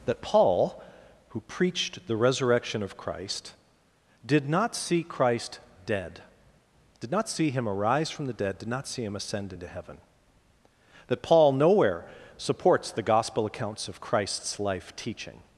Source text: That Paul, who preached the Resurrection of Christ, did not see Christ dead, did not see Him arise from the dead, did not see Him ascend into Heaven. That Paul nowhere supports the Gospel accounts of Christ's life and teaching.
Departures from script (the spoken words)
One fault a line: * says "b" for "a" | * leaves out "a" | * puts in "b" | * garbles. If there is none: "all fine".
* leaves out "and"